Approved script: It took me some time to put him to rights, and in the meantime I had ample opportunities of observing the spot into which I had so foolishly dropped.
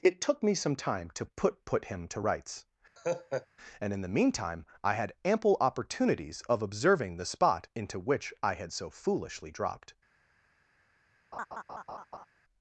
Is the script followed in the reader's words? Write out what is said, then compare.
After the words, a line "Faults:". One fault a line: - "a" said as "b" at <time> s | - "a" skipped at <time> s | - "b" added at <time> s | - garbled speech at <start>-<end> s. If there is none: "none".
It took me some time to put put him to rights, and in the meantime I had ample opportunities of observing the spot into which I had so foolishly dropped.
Faults:
- "put" added at 1.6 s